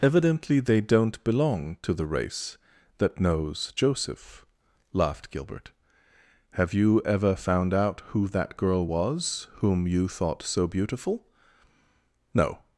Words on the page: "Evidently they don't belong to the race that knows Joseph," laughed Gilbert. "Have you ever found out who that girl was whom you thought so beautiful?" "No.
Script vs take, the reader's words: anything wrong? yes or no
no